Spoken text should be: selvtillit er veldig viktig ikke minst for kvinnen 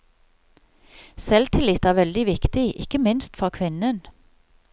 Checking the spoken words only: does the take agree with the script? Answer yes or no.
yes